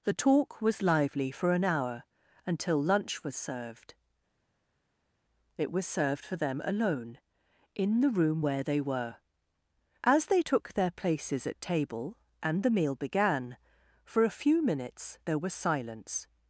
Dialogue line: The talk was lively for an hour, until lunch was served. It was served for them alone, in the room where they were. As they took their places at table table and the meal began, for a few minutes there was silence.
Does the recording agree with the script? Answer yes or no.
no